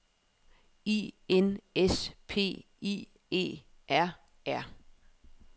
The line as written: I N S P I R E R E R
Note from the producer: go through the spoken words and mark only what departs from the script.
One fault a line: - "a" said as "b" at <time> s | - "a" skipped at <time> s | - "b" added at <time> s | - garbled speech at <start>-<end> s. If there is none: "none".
- "R" skipped at 3.1 s
- "E" skipped at 4.2 s